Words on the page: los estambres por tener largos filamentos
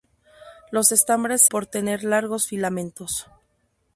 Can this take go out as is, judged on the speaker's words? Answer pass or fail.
pass